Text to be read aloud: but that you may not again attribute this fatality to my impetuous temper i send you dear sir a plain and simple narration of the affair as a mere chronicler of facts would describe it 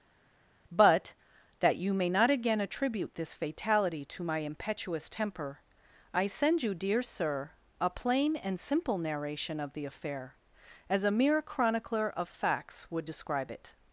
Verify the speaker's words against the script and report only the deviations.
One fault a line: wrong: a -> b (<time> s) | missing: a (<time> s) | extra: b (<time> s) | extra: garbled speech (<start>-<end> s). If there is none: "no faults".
no faults